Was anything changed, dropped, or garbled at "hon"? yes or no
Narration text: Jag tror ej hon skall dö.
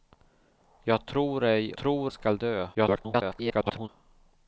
yes